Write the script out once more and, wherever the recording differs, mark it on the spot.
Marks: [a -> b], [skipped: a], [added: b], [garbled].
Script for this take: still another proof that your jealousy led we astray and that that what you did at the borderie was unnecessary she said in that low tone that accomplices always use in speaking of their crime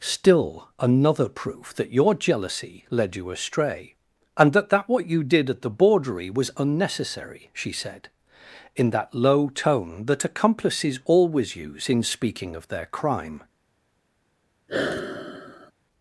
still another proof that your jealousy led [we -> you] astray and that that what you did at the borderie was unnecessary she said in that low tone that accomplices always use in speaking of their crime